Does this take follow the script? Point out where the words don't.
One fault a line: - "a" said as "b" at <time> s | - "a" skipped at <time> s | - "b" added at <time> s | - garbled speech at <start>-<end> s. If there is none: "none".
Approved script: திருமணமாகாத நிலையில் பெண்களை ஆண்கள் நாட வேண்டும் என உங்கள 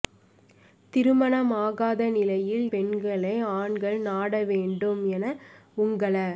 none